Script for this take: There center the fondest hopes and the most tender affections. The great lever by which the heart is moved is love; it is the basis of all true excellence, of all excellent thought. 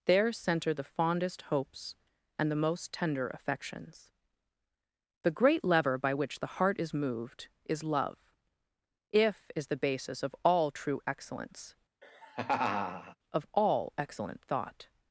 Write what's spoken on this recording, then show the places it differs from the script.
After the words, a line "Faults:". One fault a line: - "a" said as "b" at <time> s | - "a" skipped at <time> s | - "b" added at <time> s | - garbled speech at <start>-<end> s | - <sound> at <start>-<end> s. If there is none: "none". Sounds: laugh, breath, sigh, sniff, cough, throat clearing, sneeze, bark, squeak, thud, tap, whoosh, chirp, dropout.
There center the fondest hopes and the most tender affections. The great lever by which the heart is moved is love; if is the basis of all true excellence, of all excellent thought.
Faults:
- "it" said as "if" at 9.1 s
- laugh at 12.0-13.2 s